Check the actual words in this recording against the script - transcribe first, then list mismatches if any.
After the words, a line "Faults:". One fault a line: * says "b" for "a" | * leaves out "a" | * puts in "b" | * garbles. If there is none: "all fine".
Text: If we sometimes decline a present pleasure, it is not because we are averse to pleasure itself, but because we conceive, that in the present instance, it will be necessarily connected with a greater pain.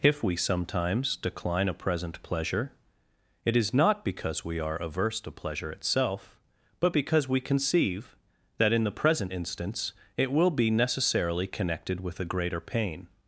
If we sometimes decline a present pleasure, it is not because we are averse to pleasure itself, but because we conceive, that in the present instance, it will be necessarily connected with a greater pain.
Faults:
all fine